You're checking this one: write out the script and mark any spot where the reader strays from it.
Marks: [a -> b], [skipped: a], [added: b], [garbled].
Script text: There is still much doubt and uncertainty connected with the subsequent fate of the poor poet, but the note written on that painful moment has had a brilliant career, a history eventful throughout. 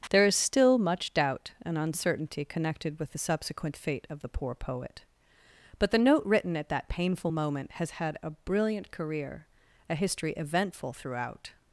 There is still much doubt and uncertainty connected with the subsequent fate of the poor poet, but the note written [on -> at] that painful moment has had a brilliant career, a history eventful throughout.